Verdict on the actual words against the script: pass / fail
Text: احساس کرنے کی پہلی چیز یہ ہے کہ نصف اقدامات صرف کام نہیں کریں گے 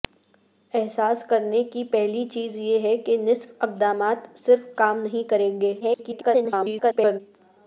fail